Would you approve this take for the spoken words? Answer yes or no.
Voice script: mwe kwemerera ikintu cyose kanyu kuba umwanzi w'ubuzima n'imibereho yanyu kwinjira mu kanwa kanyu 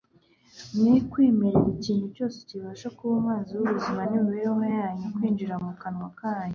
no